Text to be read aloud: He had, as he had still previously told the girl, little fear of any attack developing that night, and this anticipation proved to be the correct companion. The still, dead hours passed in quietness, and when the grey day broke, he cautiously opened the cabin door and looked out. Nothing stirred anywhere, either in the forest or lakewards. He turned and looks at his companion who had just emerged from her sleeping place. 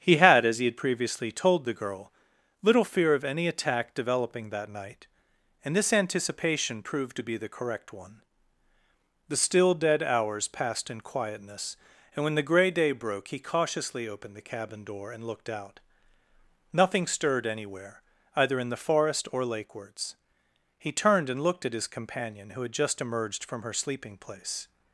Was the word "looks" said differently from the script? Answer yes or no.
yes